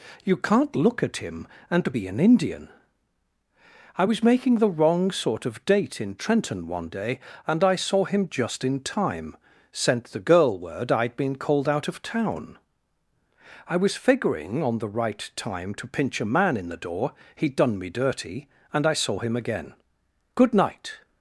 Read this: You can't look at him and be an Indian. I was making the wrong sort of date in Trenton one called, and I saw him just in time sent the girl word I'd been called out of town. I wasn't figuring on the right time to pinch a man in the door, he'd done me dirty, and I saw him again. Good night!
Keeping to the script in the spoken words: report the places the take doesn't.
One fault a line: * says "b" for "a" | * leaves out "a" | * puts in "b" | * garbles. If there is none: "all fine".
* says "day" for "called"
* says "was" for "wasn't"